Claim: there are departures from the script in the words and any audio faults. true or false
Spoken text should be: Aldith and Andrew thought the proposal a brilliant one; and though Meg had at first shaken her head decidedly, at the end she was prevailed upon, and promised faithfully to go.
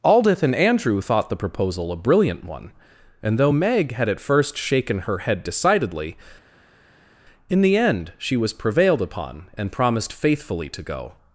true